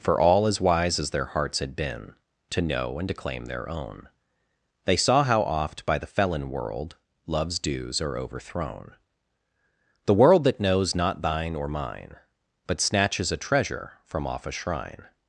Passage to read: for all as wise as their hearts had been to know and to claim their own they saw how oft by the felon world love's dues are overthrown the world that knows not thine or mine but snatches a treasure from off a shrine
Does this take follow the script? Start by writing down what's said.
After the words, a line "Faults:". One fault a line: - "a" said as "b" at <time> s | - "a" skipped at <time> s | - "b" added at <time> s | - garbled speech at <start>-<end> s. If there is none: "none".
for all as wise as their hearts had been to know and to claim their own they saw how oft by the felon world love's dues are overthrown the world that knows not thine or mine but snatches a treasure from off a shrine
Faults:
none